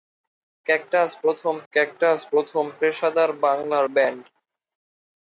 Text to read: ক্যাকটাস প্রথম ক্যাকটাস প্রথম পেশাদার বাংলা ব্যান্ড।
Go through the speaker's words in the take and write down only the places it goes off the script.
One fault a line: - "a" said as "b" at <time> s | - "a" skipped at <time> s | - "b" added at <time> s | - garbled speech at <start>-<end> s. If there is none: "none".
none